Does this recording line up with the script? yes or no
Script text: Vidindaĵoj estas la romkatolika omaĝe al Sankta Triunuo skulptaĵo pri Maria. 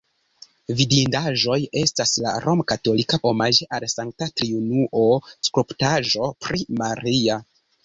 yes